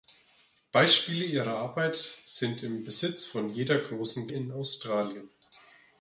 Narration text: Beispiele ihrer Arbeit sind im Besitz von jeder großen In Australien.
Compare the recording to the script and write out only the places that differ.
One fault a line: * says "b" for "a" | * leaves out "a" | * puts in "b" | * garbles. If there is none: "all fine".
all fine